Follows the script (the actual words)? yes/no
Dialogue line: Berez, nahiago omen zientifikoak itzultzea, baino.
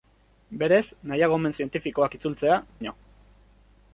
yes